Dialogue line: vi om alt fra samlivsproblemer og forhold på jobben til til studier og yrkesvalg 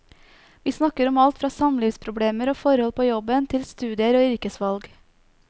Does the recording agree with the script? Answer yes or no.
no